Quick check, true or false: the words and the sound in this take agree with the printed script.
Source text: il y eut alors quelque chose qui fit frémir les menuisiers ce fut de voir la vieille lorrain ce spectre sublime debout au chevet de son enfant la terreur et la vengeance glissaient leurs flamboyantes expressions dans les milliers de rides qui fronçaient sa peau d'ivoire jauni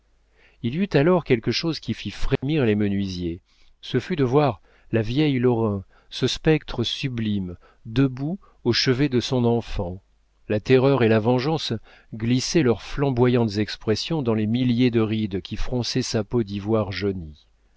false